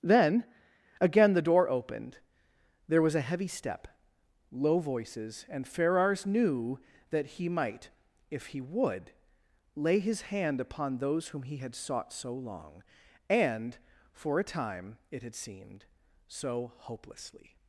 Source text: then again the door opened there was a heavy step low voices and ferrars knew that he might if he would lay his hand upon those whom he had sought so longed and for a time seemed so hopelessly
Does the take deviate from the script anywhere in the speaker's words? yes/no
yes